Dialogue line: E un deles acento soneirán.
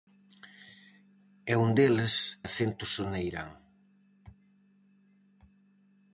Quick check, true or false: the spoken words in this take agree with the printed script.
true